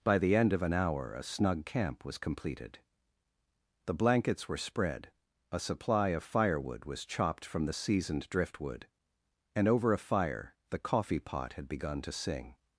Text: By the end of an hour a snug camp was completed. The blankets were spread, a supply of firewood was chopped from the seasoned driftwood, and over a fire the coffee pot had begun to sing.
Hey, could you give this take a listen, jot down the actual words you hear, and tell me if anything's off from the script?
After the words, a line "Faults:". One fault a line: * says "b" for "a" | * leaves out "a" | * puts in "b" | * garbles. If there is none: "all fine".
By the end of an hour a snug camp was completed. The blankets were spread, a supply of firewood was chopped from the seasoned driftwood, and over a fire the coffee pot had begun to sing.
Faults:
all fine